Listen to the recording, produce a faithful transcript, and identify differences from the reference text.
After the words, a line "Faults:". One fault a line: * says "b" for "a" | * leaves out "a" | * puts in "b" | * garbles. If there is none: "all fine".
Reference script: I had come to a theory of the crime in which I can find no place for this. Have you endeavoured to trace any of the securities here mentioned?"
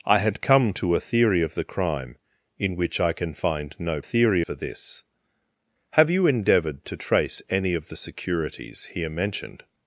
I had come to a theory of the crime in which I can find no theory for this. Have you endeavoured to trace any of the securities here mentioned?"
Faults:
* says "theory" for "place"